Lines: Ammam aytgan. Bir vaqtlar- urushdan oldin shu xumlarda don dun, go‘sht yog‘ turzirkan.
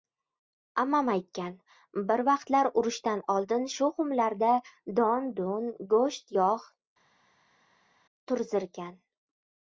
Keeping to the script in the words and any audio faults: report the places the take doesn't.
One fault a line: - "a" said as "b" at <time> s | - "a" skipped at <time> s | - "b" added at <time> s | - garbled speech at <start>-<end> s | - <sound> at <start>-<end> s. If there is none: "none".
none